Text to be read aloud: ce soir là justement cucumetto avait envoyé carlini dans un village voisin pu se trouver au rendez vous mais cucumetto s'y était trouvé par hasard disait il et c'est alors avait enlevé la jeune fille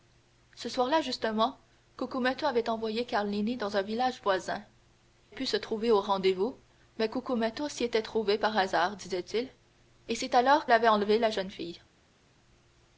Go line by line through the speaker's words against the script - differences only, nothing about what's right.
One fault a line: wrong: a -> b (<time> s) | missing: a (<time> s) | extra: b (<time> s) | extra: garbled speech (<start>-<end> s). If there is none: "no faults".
no faults